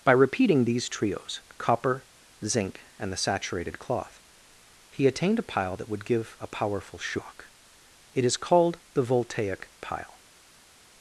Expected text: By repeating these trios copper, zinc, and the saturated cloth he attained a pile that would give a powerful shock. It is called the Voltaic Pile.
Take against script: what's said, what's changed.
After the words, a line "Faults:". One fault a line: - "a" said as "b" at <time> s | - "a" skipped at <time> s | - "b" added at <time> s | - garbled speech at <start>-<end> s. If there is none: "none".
By repeating these trios copper, zinc, and the saturated cloth he attained a pile that would give a powerful shock. It is called the Voltaic Pile.
Faults:
none